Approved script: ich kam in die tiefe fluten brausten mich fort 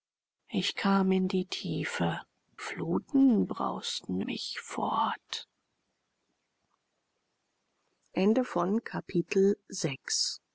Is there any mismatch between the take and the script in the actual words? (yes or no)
no